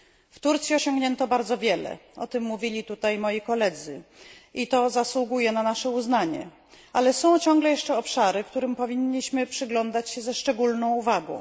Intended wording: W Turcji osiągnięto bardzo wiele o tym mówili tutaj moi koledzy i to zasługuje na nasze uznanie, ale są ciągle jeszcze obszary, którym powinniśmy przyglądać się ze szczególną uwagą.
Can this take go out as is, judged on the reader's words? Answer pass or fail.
pass